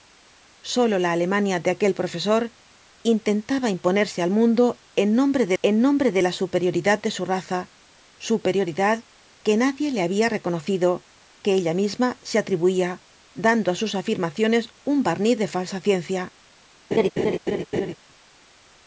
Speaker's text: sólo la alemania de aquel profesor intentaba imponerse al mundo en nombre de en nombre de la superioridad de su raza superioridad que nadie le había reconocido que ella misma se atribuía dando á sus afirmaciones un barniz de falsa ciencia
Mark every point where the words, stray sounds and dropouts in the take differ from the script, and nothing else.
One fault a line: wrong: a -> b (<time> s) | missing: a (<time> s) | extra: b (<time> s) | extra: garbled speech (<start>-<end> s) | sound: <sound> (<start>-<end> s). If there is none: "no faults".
sound: laugh (16.9-17.9 s)